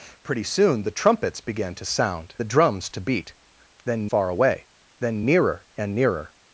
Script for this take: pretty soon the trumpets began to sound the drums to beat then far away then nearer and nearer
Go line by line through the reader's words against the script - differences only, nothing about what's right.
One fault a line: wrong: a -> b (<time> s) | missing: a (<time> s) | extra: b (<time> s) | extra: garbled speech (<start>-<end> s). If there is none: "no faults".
no faults